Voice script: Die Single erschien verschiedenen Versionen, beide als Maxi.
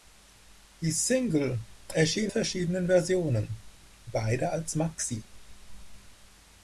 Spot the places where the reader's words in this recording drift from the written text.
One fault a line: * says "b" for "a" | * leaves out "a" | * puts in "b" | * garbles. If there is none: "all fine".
all fine